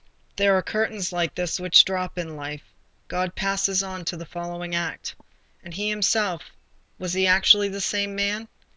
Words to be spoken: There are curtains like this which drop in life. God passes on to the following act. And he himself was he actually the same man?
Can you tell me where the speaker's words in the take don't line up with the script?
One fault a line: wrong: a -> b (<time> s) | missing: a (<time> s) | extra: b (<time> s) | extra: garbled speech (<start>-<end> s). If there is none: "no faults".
no faults